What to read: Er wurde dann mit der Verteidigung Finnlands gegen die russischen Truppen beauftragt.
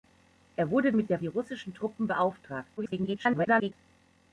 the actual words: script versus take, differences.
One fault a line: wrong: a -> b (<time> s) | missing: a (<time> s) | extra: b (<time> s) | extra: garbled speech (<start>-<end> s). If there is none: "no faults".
missing: dann (0.9 s)
missing: Verteidigung Finnlands gegen (1.2 s)
extra: garbled speech (2.8-3.7 s)